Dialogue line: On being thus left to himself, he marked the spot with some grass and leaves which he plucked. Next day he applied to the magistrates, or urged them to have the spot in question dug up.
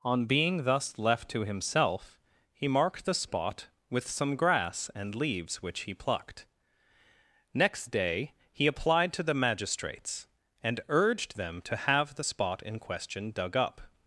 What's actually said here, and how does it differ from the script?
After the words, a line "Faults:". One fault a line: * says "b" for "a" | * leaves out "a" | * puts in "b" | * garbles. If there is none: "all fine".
On being thus left to himself, he marked the spot with some grass and leaves which he plucked. Next day he applied to the magistrates, and urged them to have the spot in question dug up.
Faults:
* says "and" for "or"